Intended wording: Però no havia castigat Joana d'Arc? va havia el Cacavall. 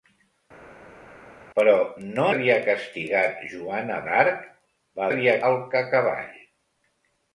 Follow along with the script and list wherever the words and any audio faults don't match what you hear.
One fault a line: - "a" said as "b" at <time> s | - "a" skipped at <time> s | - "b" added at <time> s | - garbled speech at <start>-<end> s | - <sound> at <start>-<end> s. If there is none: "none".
none